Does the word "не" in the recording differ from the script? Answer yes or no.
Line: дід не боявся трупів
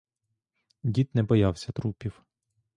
no